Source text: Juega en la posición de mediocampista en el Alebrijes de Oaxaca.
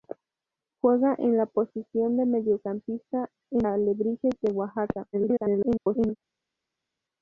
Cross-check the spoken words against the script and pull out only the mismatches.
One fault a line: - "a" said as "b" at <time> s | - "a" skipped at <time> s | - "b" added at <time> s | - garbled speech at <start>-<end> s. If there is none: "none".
- "el" skipped at 3.7 s
- garbled speech at 5.1-6.2 s